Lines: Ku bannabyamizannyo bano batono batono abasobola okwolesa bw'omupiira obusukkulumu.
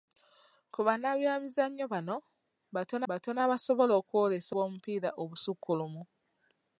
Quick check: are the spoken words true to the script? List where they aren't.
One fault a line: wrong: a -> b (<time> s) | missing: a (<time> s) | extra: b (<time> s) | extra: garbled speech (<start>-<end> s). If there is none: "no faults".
no faults